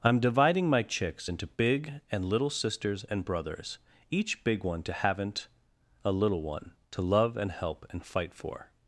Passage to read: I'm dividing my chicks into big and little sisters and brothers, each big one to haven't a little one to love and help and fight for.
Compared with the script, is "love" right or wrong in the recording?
right